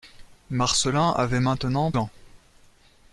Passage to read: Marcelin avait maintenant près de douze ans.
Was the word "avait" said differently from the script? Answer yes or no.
no